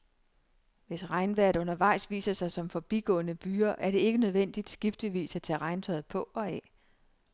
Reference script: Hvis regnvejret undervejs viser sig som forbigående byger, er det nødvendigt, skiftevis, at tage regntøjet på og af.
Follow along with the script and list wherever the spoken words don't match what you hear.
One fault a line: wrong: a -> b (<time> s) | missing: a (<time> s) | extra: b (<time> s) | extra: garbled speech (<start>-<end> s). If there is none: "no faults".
extra: ikke (4.0 s)